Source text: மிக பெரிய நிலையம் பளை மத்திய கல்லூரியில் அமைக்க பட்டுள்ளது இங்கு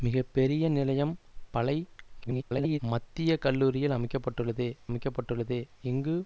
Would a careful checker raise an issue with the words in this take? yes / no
yes